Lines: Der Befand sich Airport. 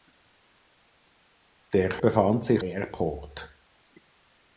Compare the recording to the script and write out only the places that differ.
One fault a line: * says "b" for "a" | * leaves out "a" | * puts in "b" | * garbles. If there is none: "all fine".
all fine